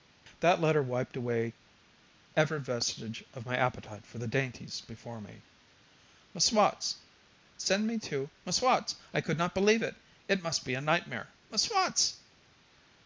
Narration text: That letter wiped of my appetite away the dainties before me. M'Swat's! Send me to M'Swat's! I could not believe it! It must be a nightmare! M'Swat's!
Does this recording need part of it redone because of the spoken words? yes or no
yes